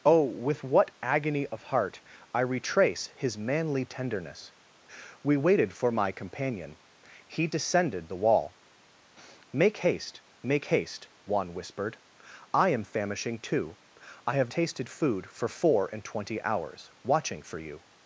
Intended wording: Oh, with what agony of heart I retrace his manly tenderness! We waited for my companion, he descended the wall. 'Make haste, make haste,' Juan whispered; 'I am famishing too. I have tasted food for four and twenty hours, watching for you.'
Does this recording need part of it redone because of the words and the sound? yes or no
no